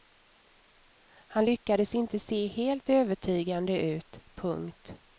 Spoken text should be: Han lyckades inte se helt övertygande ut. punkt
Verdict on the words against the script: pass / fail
pass